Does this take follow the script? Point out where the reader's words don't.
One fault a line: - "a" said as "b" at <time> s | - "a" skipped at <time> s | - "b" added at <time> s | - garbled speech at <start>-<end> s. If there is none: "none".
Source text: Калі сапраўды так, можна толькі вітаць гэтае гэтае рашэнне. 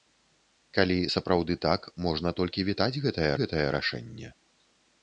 none